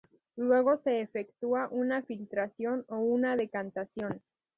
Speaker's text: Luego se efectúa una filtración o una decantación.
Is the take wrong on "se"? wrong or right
right